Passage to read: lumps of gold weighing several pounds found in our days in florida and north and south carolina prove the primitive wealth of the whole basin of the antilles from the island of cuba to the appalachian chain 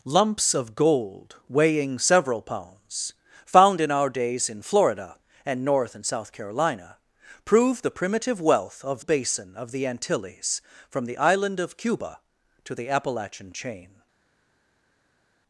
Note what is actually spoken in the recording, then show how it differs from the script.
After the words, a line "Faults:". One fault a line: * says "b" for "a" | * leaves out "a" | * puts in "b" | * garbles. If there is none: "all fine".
lumps of gold weighing several pounds found in our days in florida and north and south carolina prove the primitive wealth of basin of the antilles from the island of cuba to the appalachian chain
Faults:
* leaves out "the whole"